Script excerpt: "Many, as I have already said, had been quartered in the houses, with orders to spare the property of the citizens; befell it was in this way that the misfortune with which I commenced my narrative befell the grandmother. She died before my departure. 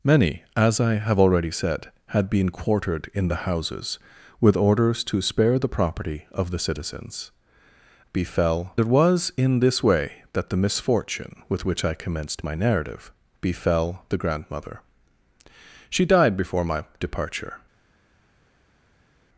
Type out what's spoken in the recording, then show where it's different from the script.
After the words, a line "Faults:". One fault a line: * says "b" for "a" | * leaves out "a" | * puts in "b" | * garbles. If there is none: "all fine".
"Many, as I have already said, had been quartered in the houses, with orders to spare the property of the citizens; befell it was in this way that the misfortune with which I commenced my narrative befell the grandmother. She died before my departure.
Faults:
all fine